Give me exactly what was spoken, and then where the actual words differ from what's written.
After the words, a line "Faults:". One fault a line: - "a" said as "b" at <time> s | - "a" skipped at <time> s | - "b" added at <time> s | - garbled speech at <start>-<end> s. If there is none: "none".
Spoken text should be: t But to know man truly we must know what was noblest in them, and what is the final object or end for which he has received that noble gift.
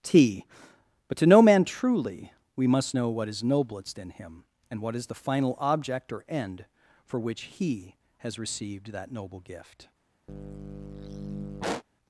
t But to know man truly we must know what is noblest in him, and what is the final object or end for which he has received that noble gift.
Faults:
- "was" said as "is" at 3.3 s
- "them" said as "him" at 4.1 s